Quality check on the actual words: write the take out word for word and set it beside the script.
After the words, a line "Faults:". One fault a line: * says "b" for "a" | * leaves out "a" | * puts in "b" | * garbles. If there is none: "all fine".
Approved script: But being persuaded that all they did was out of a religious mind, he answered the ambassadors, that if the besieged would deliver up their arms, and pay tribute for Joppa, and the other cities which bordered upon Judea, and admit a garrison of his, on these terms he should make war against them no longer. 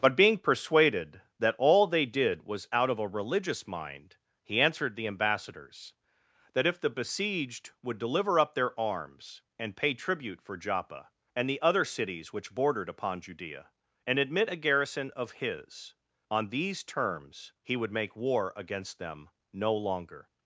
But being persuaded that all they did was out of a religious mind, he answered the ambassadors, that if the besieged would deliver up their arms, and pay tribute for Joppa, and the other cities which bordered upon Judea, and admit a garrison of his, on these terms he would make war against them no longer.
Faults:
* says "would" for "should"